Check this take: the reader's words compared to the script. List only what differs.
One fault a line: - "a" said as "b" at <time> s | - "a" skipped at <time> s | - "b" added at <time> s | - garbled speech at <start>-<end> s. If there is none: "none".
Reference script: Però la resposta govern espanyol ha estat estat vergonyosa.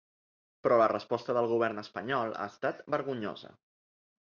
- "del" added at 1.4 s
- "estat" skipped at 2.9 s